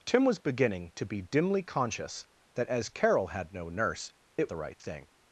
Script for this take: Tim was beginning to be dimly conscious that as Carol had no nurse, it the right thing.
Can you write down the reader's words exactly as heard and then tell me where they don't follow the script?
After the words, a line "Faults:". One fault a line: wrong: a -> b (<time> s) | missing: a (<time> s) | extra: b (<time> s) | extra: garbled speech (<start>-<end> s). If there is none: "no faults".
Tim was beginning to be dimly conscious that as Carol had no nurse, it the right thing.
Faults:
no faults